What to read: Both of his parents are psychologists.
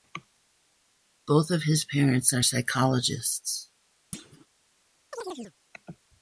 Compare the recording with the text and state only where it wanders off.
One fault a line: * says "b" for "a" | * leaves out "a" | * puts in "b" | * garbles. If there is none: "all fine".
all fine